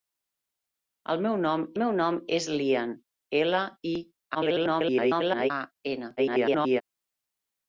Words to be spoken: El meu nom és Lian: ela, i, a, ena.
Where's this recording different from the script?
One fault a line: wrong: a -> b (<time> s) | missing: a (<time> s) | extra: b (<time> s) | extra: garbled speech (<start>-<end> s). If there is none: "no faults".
extra: meu nom (1.8 s)
extra: garbled speech (4.3-5.5 s)
extra: garbled speech (6.2-6.8 s)